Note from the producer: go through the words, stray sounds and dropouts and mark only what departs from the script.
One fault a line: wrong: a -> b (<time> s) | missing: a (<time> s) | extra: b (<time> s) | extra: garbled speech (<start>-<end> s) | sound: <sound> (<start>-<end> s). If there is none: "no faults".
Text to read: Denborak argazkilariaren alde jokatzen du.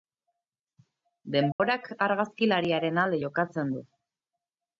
sound: dropout (1.5-1.6 s)